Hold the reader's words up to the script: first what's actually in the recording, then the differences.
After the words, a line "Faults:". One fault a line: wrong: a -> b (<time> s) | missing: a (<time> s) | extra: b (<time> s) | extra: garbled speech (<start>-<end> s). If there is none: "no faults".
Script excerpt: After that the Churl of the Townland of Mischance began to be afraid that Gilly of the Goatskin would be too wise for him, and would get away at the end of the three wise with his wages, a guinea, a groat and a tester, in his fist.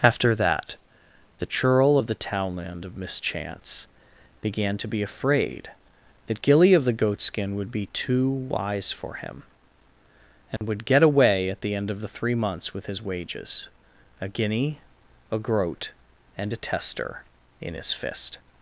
After that the Churl of the Townland of Mischance began to be afraid that Gilly of the Goatskin would be too wise for him, and would get away at the end of the three months with his wages, a guinea, a groat and a tester, in his fist.
Faults:
wrong: wise -> months (12.4 s)